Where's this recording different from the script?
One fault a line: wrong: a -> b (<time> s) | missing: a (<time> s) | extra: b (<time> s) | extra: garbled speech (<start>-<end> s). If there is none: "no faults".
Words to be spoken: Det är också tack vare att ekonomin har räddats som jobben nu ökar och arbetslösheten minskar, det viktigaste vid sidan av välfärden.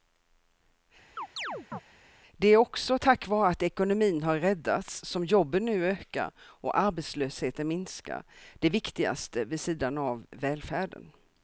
no faults